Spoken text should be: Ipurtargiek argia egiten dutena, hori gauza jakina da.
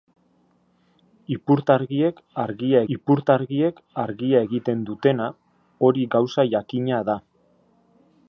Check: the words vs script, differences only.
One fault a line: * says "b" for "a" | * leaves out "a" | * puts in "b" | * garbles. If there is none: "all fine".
* puts in "ipurtargiek argia"